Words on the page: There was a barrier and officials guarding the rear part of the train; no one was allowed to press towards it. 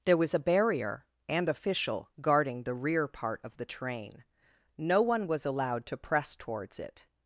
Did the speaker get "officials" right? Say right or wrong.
wrong